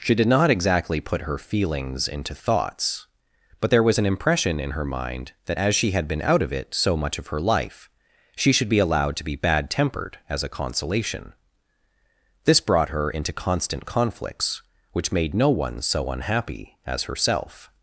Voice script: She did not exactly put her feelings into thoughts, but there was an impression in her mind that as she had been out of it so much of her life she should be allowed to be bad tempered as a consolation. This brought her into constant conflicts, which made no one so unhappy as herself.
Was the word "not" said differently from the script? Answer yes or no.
no